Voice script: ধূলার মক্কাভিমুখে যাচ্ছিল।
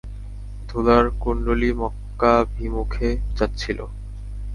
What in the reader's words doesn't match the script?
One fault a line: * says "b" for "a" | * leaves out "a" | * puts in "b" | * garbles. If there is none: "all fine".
* puts in "কুণ্ডলী"